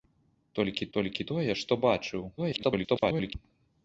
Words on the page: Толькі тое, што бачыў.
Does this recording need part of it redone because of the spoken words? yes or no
yes